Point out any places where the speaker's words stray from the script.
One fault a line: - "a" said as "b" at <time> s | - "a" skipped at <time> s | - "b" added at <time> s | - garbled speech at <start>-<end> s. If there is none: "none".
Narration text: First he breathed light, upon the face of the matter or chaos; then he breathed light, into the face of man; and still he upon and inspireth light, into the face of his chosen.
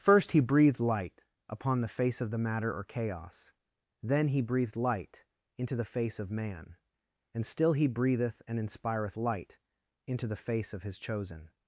- "upon" said as "breatheth" at 7.9 s